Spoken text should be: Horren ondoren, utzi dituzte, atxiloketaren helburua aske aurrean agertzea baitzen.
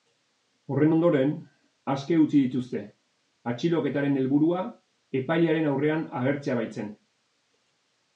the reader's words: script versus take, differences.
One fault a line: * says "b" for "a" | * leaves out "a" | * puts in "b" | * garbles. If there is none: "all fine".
* puts in "aske"
* says "epailearen" for "aske"